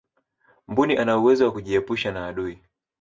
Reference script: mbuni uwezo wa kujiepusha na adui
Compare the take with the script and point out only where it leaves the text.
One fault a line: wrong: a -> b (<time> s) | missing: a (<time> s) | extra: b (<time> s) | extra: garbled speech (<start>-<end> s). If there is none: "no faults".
extra: ana (1.0 s)